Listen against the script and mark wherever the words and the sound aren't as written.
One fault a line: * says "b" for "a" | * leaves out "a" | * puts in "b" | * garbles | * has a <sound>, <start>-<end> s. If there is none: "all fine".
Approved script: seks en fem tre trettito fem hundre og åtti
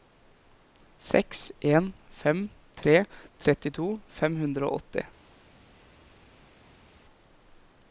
all fine